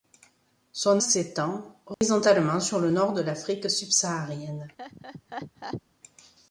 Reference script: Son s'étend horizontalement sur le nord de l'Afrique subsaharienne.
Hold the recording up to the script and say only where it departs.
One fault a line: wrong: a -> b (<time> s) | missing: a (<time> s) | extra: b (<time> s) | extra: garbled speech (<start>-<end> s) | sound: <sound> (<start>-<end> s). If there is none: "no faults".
sound: dropout (1.9-2.0 s)
sound: laugh (4.8-5.8 s)